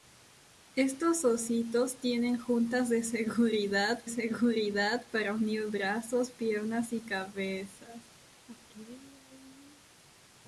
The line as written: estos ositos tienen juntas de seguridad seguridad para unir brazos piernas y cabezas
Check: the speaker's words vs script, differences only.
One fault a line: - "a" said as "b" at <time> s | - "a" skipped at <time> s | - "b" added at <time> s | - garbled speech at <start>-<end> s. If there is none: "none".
none